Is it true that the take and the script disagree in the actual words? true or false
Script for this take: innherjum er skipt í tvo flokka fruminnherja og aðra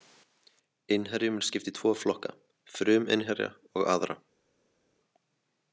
false